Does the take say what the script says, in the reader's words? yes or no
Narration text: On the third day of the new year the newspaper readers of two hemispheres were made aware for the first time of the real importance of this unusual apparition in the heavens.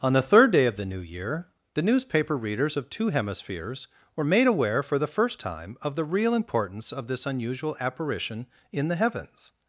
yes